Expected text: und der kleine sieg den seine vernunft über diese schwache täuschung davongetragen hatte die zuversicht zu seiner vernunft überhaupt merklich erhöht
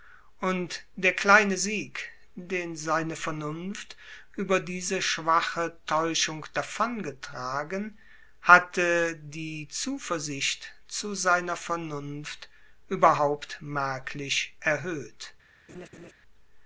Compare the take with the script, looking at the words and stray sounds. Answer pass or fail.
fail